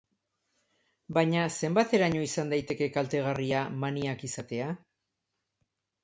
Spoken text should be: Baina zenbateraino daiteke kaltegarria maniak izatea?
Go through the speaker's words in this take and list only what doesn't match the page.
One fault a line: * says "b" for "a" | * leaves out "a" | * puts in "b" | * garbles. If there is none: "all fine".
* puts in "izan"